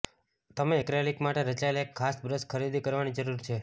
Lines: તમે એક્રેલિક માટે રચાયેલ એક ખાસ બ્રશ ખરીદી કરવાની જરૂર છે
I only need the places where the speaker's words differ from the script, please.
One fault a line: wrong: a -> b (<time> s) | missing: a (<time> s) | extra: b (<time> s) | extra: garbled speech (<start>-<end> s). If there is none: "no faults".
no faults